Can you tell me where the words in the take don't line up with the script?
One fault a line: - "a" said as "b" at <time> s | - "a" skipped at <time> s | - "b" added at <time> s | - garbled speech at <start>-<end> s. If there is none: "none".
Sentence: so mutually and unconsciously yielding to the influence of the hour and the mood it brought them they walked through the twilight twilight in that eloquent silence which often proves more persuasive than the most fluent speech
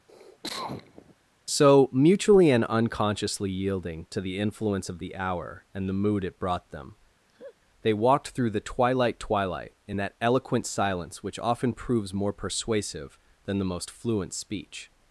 none